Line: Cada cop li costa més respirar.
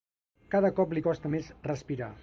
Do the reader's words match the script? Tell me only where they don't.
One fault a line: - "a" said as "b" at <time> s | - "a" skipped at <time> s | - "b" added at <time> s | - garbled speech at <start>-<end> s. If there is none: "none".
none